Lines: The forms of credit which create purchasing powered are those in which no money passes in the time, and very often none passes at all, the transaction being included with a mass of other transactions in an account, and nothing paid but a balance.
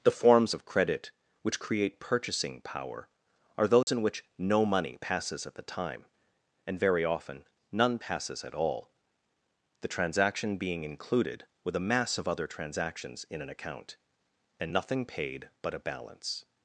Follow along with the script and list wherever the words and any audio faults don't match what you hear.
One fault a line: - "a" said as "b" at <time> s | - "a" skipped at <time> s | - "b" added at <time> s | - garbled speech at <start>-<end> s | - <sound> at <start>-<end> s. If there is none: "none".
- "powered" said as "power" at 2.6 s
- dropout at 3.8-3.9 s
- "in" said as "at" at 5.4 s